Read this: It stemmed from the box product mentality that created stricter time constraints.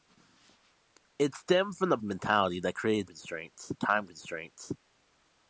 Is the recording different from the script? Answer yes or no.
yes